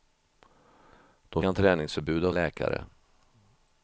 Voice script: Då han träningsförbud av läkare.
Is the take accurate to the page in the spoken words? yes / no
yes